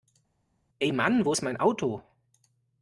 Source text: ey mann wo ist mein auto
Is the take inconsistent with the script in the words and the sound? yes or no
no